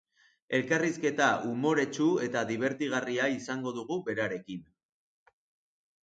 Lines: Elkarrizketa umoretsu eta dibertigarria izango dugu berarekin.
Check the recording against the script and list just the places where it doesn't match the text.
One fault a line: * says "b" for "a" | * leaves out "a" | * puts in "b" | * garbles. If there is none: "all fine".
all fine